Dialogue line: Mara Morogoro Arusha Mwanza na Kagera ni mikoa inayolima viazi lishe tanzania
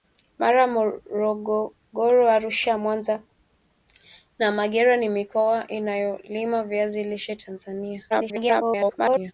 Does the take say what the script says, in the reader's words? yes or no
no